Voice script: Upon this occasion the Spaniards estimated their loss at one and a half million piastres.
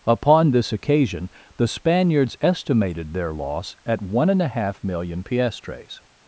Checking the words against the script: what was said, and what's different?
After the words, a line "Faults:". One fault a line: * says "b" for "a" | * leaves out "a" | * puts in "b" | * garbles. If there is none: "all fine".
Upon this occasion the Spaniards estimated their loss at one and a half million piastres.
Faults:
all fine